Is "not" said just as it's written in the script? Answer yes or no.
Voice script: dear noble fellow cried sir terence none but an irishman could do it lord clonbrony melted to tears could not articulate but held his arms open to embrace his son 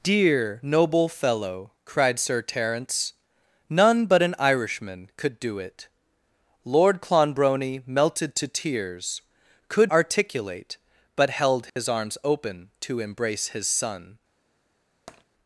no